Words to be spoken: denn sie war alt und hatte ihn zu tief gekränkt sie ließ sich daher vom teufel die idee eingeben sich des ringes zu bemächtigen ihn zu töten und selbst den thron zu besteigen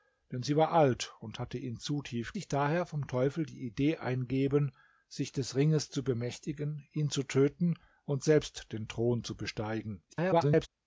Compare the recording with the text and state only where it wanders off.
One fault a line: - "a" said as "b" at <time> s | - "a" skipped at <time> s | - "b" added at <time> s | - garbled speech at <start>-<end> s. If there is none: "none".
- "gekränkt sie ließ" skipped at 2.3 s
- garbled speech at 10.1-10.7 s